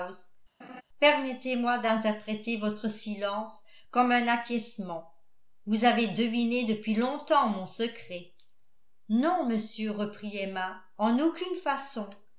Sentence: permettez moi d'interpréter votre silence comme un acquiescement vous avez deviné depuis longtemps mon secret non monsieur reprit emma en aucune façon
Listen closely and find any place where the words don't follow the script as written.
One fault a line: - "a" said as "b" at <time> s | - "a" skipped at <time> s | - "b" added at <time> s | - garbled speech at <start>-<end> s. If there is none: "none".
none